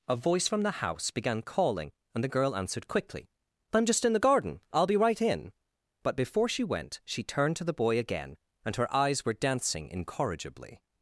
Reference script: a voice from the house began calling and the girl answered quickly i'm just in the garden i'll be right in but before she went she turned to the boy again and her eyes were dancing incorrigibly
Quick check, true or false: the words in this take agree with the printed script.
true